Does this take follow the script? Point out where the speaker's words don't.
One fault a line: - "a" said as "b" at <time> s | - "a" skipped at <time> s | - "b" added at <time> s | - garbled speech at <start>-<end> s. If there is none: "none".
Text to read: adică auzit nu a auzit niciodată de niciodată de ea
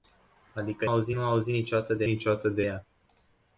none